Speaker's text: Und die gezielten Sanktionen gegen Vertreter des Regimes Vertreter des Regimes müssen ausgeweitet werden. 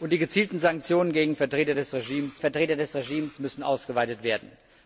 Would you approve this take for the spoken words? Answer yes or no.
yes